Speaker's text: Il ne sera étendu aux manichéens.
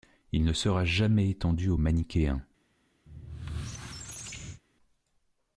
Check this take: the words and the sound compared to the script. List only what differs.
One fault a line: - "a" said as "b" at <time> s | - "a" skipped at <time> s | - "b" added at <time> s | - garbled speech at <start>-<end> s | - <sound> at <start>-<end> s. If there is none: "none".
- "jamais" added at 0.8 s
- squeak at 3.1-4.6 s